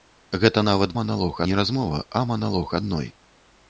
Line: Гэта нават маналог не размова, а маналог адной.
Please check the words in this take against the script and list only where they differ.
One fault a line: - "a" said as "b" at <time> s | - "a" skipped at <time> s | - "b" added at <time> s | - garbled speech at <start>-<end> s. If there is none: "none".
none